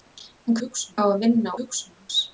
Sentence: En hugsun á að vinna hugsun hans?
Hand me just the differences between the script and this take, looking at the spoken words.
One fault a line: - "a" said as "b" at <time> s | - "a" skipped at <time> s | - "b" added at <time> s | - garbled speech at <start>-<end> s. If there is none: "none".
none